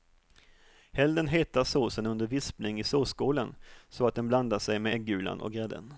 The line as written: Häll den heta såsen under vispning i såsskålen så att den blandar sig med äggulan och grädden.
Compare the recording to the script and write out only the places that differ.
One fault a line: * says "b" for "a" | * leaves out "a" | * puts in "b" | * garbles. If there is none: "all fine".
all fine